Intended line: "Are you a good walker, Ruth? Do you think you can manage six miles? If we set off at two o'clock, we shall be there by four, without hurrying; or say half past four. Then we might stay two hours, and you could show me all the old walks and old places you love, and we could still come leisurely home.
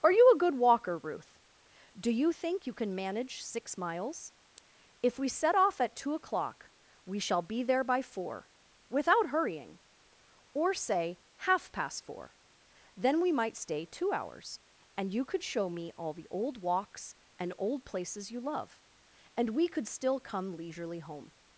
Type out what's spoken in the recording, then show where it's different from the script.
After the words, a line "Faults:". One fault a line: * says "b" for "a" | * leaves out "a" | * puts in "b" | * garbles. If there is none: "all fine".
"Are you a good walker, Ruth? Do you think you can manage six miles? If we set off at two o'clock, we shall be there by four, without hurrying; or say half past four. Then we might stay two hours, and you could show me all the old walks and old places you love, and we could still come leisurely home.
Faults:
all fine